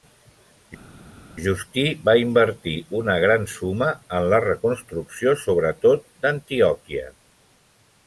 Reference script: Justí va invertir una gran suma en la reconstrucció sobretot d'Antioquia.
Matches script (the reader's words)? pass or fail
pass